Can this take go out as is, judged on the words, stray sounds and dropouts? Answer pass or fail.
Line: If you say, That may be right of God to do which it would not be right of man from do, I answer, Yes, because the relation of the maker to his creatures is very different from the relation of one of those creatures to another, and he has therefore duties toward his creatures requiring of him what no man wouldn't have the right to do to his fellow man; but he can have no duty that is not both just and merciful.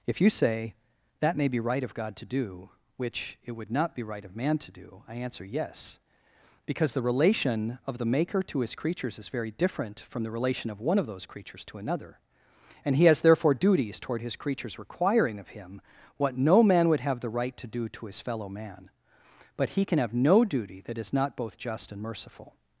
fail